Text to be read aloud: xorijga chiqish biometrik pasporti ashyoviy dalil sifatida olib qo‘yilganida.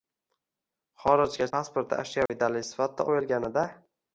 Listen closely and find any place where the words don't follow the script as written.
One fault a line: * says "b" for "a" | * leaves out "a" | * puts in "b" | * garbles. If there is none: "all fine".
* leaves out "chiqish biometrik"
* leaves out "olib"